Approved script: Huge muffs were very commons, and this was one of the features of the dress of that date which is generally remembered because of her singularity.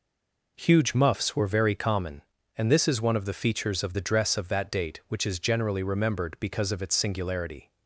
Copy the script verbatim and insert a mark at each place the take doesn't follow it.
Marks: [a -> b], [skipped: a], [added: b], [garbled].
Huge muffs were very [commons, -> common] and this [was -> is] one of the features of the dress of that date which is generally remembered because of [her -> its] singularity.